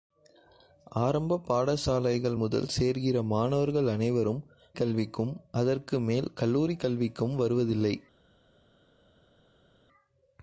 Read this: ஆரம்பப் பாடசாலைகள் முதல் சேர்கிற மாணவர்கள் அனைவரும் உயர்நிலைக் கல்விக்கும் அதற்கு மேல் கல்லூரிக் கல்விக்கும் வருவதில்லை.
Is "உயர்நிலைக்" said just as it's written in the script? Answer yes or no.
no